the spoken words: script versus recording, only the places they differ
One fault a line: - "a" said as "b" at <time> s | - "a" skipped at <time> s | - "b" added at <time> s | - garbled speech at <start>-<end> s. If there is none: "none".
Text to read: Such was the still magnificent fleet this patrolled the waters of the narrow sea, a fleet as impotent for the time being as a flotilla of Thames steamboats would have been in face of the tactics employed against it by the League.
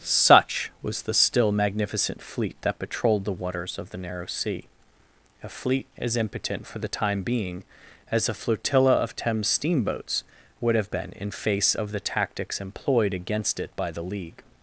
- "this" said as "that" at 2.6 s